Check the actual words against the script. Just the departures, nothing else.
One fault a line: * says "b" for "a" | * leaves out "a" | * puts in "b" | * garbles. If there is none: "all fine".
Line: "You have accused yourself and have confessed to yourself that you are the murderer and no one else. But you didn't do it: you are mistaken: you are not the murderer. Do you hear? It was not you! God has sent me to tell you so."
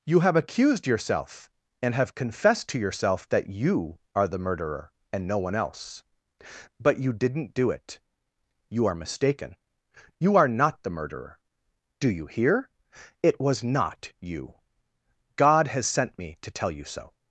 all fine